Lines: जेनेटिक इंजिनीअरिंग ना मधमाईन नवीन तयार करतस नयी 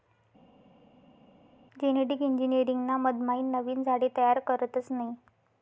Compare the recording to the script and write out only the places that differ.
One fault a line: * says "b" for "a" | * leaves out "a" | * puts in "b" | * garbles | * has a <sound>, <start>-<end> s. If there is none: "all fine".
* puts in "झाडे"